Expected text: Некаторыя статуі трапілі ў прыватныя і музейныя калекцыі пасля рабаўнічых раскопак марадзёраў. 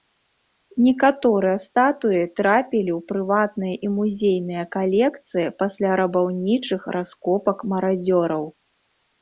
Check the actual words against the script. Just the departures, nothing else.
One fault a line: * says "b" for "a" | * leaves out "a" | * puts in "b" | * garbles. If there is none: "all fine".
all fine